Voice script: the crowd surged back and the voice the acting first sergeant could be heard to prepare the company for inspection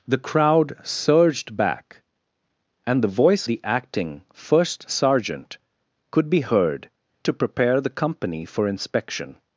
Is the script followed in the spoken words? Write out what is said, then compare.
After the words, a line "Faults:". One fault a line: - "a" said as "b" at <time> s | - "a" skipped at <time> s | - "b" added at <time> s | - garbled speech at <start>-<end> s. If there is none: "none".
the crowd surged back and the voice the acting first sergeant could be heard to prepare the company for inspection
Faults:
none